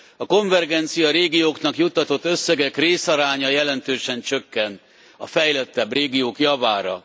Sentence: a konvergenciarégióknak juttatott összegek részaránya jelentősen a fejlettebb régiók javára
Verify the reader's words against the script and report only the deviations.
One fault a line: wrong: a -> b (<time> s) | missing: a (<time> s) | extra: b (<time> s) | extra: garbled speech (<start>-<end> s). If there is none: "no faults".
extra: csökken (4.2 s)